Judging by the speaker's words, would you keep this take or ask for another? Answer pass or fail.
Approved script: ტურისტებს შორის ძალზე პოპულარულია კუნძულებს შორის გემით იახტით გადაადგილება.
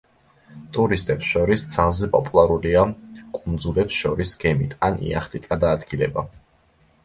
fail